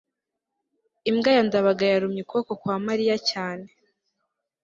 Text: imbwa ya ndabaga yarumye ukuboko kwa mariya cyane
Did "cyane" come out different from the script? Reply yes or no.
no